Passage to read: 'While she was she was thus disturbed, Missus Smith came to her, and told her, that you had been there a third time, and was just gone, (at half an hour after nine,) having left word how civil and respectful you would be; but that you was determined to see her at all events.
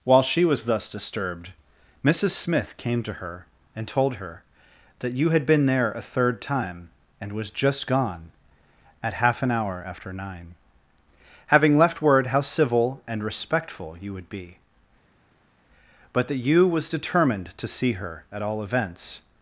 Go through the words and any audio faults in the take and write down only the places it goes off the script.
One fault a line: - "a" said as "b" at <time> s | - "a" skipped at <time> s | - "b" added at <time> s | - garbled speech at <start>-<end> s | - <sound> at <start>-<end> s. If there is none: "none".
- "she was" skipped at 0.6 s